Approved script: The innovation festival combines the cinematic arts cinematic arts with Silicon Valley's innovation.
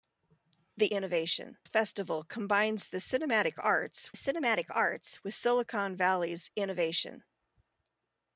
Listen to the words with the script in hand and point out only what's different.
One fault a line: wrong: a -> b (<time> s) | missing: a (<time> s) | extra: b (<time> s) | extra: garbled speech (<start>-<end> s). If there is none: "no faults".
no faults